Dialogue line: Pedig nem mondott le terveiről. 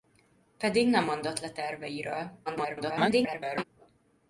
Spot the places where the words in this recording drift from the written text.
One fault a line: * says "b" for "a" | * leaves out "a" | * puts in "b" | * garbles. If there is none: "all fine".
* garbles